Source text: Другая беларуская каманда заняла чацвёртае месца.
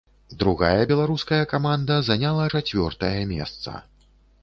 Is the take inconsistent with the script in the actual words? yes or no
no